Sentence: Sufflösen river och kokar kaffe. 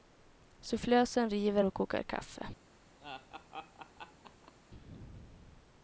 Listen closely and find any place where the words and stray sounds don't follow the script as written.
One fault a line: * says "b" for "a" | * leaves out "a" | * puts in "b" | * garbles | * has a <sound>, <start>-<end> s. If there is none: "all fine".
* has a laugh, 3.0-4.5 s